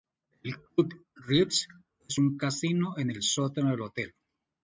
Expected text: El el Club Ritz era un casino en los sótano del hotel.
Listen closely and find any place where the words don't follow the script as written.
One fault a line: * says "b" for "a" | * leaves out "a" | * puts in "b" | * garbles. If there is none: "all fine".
* leaves out "el"
* says "es" for "era"
* says "el" for "los"